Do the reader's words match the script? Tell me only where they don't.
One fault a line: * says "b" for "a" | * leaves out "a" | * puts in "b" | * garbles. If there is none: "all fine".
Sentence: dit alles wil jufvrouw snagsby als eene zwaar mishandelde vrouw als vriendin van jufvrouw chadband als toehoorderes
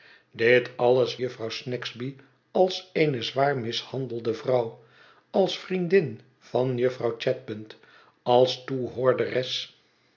* leaves out "wil"